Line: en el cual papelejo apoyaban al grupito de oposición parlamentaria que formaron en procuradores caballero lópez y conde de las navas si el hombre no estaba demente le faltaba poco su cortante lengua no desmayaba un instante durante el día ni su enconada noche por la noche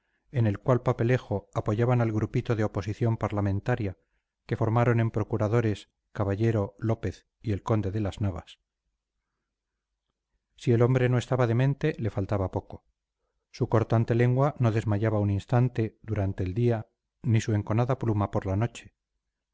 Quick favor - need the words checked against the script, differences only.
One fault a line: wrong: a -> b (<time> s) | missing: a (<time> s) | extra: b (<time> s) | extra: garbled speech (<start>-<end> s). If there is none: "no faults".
extra: el (7.5 s)
wrong: noche -> pluma (18.0 s)